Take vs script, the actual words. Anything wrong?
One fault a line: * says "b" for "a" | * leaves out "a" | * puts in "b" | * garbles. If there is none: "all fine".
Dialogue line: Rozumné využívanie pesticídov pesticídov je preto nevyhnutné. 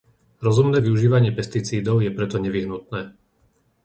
* leaves out "pesticídov"